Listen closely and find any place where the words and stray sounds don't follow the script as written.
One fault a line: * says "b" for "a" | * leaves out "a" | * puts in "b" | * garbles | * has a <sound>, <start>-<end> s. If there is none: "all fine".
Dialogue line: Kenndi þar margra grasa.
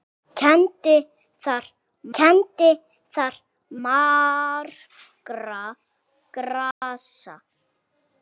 * puts in "kenndi þar"
* has a dropout, 6.7-6.8 s